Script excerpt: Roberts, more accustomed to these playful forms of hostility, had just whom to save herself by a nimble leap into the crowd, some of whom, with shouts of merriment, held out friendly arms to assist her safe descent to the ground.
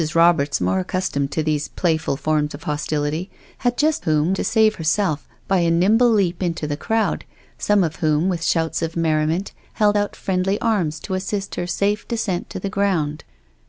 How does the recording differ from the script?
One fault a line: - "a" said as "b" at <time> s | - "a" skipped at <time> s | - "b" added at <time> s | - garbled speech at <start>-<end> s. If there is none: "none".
none